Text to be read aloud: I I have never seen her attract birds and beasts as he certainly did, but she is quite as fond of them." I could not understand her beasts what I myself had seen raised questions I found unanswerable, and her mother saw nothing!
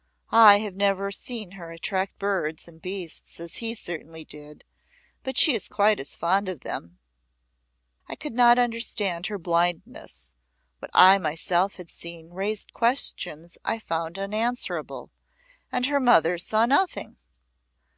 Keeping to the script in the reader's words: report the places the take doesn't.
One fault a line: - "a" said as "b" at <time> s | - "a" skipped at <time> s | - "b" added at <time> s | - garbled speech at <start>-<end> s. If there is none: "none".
- "I" skipped at 0.6 s
- "beasts" said as "blindness" at 9.4 s